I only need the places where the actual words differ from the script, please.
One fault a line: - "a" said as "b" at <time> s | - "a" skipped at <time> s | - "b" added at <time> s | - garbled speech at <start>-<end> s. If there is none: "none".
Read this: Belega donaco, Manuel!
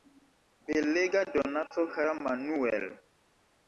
- "kara" added at 1.9 s